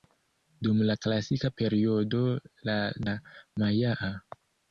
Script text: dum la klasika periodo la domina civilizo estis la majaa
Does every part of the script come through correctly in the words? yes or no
no